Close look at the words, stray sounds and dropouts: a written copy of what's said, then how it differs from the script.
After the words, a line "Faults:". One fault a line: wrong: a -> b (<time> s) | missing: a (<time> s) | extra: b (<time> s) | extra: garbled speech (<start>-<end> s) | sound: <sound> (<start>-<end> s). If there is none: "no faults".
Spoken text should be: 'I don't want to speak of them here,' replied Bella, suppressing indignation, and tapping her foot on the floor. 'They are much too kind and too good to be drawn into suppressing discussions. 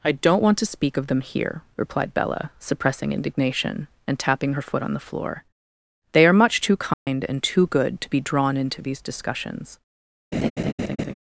'I don't want to speak of them here,' replied Bella, suppressing indignation, and tapping her foot on the floor. 'They are much too kind and too good to be drawn into these discussions.
Faults:
sound: dropout (6.9-7.1 s)
wrong: suppressing -> these (8.8 s)
sound: laugh (10.3-11.1 s)